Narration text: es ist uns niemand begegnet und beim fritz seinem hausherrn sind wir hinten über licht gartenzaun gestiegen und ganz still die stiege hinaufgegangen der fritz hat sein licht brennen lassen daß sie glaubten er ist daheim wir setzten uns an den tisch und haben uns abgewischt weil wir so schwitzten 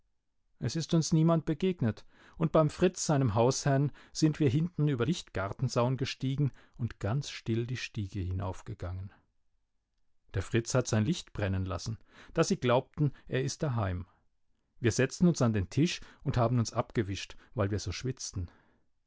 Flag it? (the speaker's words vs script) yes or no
no